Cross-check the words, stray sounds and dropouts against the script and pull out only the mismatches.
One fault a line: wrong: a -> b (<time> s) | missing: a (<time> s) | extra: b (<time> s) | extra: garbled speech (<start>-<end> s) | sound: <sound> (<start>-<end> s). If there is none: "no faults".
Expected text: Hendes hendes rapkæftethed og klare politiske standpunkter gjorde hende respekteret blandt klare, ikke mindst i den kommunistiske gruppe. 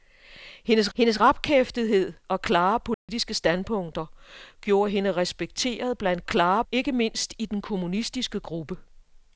sound: dropout (2.9-3.1 s)